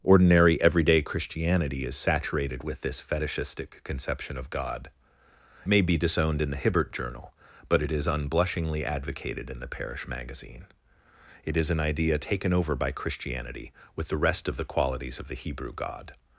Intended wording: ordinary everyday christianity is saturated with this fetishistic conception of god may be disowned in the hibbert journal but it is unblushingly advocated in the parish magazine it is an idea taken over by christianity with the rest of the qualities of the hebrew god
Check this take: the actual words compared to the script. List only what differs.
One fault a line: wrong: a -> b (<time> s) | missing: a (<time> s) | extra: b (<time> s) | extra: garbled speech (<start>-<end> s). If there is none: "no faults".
no faults